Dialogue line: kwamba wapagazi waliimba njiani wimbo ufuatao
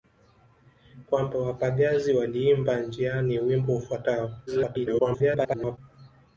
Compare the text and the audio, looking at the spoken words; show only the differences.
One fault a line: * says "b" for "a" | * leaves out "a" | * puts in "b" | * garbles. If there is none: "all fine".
* garbles